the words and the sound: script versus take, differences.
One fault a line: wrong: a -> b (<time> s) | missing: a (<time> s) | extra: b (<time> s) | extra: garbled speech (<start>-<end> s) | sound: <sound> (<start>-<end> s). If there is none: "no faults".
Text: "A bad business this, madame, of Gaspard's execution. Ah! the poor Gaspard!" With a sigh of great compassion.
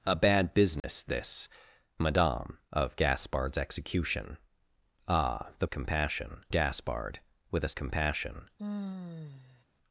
sound: dropout (0.8-0.8 s)
wrong: poor -> compassion (5.7 s)
missing: sigh of great (7.7 s)
sound: sigh (8.6-9.6 s)